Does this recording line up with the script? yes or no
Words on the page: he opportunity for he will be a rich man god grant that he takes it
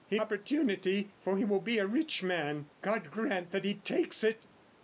yes